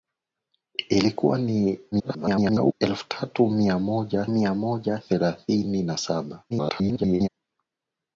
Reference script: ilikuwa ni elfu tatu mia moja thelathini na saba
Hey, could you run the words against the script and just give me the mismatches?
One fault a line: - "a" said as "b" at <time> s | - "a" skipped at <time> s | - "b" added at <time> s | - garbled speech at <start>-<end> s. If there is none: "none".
- garbled speech at 1.9-2.7 s
- "mia moja" added at 4.3 s
- garbled speech at 6.5-7.3 s